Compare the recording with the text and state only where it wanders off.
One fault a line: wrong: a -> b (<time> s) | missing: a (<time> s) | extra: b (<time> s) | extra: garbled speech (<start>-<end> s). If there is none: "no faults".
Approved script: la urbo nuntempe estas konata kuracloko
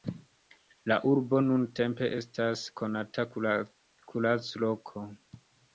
no faults